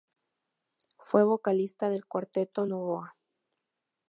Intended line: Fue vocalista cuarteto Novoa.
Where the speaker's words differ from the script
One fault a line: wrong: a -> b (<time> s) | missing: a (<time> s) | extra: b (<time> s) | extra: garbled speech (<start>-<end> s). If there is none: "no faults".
extra: del (1.9 s)